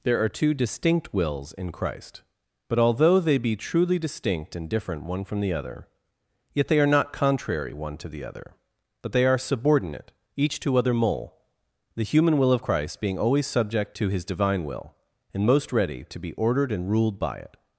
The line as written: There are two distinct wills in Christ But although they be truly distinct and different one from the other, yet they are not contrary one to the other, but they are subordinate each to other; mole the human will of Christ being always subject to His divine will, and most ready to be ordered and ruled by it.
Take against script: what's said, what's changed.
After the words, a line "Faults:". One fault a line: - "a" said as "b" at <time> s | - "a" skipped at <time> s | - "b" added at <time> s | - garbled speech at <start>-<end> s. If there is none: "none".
There are two distinct wills in Christ But although they be truly distinct and different one from the other, yet they are not contrary one to the other, but they are subordinate each to other; mole the human will of Christ being always subject to His divine will, and most ready to be ordered and ruled by it.
Faults:
none